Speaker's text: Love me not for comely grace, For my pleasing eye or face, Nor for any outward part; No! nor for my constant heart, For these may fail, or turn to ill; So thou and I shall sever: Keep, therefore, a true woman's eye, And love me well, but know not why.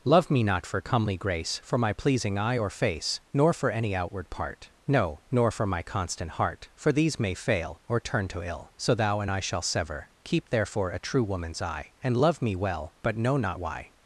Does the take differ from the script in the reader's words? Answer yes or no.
no